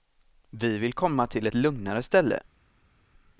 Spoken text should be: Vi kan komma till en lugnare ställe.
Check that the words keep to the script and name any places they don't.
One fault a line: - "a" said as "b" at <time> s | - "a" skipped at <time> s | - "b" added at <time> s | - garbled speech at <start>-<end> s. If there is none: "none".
- "kan" said as "vill" at 0.8 s
- "en" said as "ett" at 1.5 s